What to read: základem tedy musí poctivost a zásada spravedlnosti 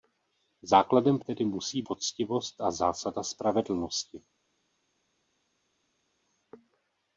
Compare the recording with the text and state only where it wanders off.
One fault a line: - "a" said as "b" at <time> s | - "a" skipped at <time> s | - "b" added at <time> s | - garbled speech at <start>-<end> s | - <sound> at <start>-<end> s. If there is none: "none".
none